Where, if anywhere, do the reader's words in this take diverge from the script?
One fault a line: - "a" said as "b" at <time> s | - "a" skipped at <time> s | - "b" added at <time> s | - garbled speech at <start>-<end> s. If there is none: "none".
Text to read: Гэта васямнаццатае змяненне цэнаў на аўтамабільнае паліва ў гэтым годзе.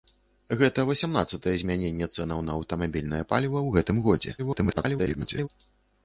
- garbled speech at 4.4-5.5 s